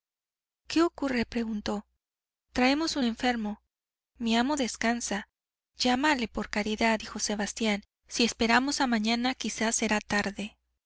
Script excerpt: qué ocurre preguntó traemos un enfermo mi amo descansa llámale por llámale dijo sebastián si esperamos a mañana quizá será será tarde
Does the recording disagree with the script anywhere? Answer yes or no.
yes